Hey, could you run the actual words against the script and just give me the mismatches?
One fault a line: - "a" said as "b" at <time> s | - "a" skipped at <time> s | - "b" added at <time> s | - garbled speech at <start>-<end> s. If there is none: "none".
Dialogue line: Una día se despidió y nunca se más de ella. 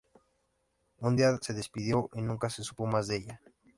- "Una" said as "Un" at 1.0 s
- "supo" added at 2.6 s